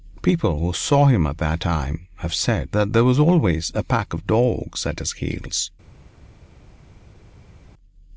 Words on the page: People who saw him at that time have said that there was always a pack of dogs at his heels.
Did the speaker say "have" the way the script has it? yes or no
yes